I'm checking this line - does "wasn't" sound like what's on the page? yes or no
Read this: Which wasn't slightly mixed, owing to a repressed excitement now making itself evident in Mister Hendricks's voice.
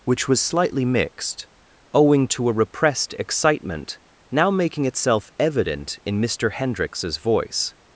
no